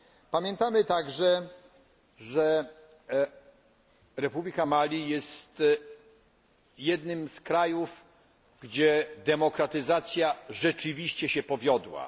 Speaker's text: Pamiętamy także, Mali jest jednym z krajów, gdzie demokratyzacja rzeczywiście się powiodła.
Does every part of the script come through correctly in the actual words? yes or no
no